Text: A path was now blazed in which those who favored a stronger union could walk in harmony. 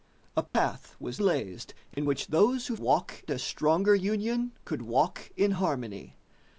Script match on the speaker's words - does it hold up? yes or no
no